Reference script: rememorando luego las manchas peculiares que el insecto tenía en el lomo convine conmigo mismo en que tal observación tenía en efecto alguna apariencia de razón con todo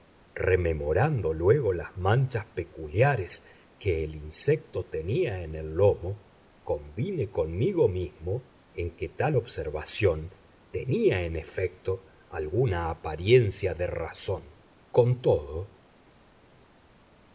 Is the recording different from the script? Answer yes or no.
no